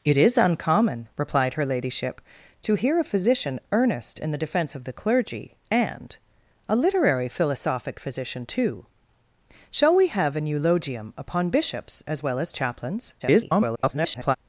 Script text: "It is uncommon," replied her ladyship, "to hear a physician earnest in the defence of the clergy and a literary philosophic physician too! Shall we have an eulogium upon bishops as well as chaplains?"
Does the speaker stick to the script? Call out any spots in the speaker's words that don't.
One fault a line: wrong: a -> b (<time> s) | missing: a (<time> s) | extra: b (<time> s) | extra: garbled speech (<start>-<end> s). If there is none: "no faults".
extra: garbled speech (13.2-14.4 s)